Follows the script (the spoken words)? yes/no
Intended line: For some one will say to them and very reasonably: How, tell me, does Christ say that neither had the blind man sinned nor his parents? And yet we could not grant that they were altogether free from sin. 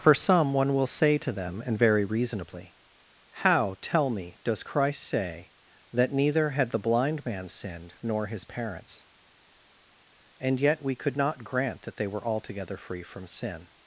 yes